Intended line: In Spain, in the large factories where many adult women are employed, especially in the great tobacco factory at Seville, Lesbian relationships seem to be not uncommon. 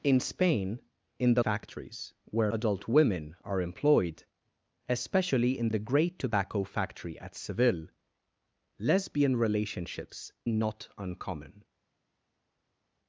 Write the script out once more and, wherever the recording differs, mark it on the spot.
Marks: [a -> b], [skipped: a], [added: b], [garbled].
In Spain, in the [skipped: large] factories where [skipped: many] adult women are employed, especially in the great tobacco factory at Seville, Lesbian relationships [skipped: seem to be] not uncommon.